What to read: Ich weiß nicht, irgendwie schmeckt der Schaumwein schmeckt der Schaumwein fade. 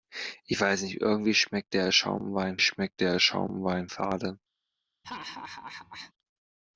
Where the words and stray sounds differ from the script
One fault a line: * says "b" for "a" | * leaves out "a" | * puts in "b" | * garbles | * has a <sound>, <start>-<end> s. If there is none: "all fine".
* has a laugh, 5.0-6.1 s